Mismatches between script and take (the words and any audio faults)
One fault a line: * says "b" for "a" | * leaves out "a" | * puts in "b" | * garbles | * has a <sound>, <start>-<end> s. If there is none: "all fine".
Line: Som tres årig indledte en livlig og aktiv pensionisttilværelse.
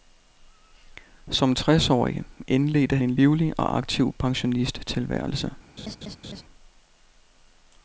* has a laugh, 5.8-6.4 s